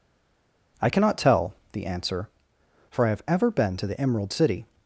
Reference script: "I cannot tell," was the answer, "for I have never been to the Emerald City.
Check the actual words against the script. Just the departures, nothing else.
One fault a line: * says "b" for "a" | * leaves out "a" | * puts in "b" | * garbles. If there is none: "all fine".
* leaves out "was"
* says "ever" for "never"